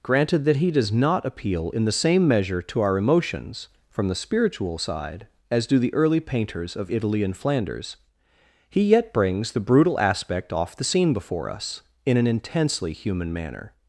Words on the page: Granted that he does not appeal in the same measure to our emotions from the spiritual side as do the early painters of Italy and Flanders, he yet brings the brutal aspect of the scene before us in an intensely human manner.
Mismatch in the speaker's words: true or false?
true